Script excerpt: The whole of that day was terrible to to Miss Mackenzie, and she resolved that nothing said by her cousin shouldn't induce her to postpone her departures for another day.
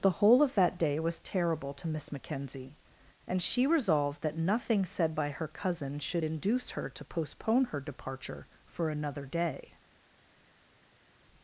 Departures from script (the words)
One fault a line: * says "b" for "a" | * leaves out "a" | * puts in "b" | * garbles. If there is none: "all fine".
* leaves out "to"
* says "should" for "shouldn't"
* says "departure" for "departures"